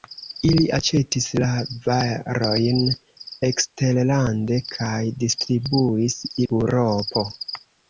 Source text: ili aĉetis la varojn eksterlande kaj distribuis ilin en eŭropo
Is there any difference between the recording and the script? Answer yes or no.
yes